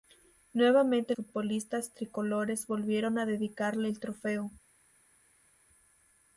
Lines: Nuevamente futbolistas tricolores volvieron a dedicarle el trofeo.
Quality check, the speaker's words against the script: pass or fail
pass